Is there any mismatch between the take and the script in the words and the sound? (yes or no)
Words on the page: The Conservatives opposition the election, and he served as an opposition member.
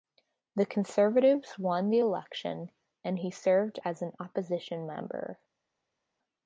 yes